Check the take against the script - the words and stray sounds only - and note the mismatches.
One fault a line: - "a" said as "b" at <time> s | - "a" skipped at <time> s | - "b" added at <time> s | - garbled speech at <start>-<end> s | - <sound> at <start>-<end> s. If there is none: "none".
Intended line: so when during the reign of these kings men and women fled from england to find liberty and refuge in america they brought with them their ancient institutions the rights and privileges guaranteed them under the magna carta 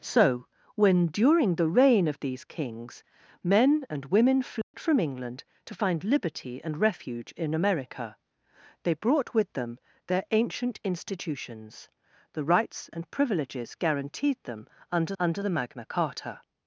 - dropout at 4.6-4.7 s
- "under" added at 15.2 s